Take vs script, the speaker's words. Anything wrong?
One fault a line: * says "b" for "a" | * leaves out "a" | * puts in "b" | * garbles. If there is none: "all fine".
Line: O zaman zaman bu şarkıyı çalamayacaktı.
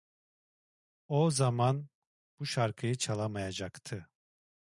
* leaves out "zaman"